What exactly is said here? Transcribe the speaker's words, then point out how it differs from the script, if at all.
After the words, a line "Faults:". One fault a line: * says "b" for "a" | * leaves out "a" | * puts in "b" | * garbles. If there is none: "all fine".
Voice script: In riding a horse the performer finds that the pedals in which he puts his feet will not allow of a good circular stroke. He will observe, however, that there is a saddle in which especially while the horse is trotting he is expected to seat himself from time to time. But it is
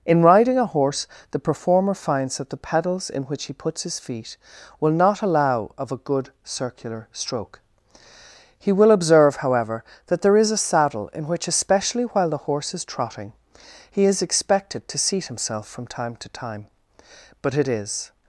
In riding a horse the performer finds that the pedals in which he puts his feet will not allow of a good circular stroke. He will observe, however, that there is a saddle in which especially while the horse is trotting he is expected to seat himself from time to time. But it is
Faults:
all fine